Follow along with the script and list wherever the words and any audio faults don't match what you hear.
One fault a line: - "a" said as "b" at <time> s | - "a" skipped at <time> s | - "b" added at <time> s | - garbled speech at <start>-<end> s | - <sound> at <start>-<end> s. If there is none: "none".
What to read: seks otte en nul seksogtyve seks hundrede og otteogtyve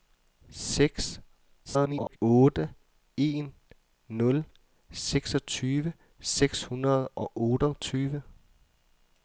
- garbled speech at 1.6-2.2 s